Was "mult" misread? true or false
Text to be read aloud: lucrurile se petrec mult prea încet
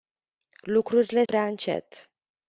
true